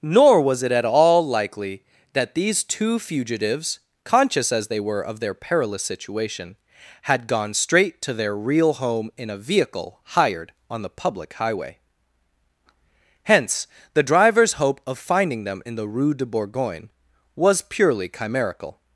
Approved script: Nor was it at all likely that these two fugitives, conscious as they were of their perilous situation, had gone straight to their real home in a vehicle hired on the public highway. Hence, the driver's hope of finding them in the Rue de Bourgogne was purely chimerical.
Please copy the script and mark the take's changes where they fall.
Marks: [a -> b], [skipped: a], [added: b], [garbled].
Nor was it at all likely that these two fugitives, conscious as they were of their perilous situation, had gone straight to their real home in a vehicle hired on the public highway. Hence, the driver's hope of finding them in the Rue de Bourgogne was purely chimerical.